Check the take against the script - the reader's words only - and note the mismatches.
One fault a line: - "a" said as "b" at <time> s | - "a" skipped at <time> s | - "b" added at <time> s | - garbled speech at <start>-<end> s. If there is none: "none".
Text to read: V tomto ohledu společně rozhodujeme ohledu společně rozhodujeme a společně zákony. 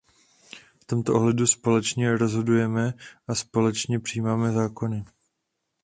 - "ohledu" said as "a" at 3.3 s
- "rozhodujeme a společně" said as "přijímáme" at 4.0 s